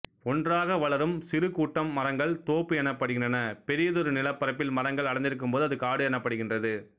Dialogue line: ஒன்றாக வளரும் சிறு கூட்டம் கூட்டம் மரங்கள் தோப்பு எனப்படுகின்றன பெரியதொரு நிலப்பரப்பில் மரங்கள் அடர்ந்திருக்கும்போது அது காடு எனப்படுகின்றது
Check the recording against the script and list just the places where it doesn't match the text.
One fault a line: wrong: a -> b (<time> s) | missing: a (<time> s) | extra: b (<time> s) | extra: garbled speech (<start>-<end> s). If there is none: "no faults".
missing: கூட்டம் (1.9 s)